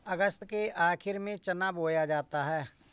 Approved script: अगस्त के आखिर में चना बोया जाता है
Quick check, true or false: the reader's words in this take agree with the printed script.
true